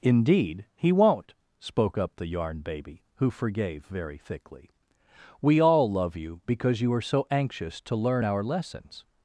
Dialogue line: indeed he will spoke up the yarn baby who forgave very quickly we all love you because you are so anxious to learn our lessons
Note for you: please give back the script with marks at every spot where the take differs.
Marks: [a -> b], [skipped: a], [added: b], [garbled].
indeed he [will -> won't] spoke up the yarn baby who forgave very [quickly -> thickly] we all love you because you are so anxious to learn our lessons